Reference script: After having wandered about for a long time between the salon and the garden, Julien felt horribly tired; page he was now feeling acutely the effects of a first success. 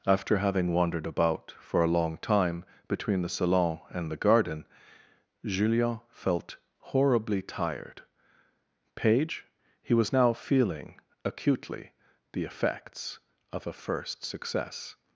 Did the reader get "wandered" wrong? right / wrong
right